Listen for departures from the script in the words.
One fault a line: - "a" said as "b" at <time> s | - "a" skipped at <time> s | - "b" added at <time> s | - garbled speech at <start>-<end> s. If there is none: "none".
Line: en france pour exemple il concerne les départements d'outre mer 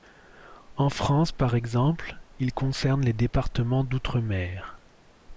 - "pour" said as "par" at 1.3 s